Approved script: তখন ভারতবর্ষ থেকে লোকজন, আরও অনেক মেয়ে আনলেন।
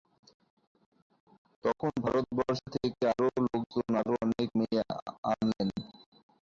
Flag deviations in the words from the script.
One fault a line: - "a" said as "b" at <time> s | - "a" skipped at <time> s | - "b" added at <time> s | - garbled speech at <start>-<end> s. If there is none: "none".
- "আরও" added at 3.1 s